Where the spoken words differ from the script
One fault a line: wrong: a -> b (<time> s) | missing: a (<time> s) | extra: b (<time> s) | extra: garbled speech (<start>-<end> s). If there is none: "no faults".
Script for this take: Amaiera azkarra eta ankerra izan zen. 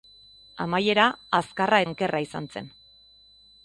missing: eta (1.8 s)